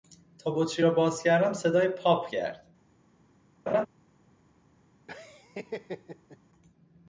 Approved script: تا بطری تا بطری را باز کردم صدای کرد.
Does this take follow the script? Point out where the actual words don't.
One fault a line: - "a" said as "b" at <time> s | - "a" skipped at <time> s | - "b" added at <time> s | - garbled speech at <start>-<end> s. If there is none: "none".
- "تا بطری" skipped at 0.9 s
- "پاپ" added at 1.9 s